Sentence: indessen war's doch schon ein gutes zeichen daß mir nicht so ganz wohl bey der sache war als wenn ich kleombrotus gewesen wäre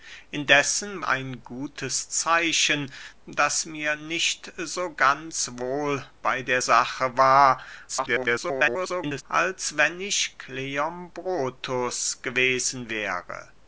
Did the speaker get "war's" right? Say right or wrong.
wrong